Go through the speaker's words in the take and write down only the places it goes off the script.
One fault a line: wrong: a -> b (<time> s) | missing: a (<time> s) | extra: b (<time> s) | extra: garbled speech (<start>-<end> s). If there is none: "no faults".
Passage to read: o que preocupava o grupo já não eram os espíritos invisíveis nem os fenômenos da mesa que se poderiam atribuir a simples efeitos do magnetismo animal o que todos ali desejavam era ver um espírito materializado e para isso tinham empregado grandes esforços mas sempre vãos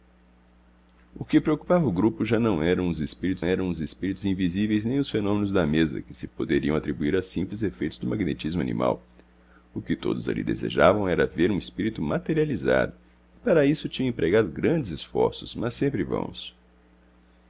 extra: eram os espíritos (3.4 s)